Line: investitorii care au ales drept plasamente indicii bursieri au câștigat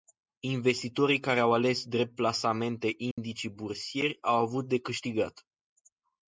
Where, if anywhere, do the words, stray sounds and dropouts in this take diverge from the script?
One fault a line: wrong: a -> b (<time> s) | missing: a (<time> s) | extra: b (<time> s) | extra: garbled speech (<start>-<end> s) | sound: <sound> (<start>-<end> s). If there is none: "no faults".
sound: dropout (3.1-3.2 s)
extra: avut de (4.4 s)